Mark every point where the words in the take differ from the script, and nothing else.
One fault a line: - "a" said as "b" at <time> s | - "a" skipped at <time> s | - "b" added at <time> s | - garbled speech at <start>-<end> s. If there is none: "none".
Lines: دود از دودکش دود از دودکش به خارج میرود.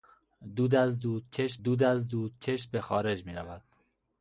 none